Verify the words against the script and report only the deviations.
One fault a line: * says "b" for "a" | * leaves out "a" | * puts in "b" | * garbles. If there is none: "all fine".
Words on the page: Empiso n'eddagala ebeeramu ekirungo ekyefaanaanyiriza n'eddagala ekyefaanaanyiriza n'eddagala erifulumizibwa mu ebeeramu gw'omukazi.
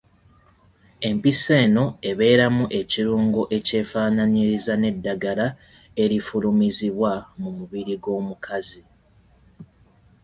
* says "eno" for "n'eddagala"
* leaves out "ekyefaanaanyiriza n'eddagala"
* says "mubiri" for "ebeeramu"